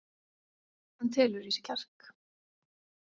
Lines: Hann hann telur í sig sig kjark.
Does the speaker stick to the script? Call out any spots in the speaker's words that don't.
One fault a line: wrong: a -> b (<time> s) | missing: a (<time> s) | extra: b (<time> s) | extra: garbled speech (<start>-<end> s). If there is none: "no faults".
missing: hann (1.1 s)
missing: sig (1.7 s)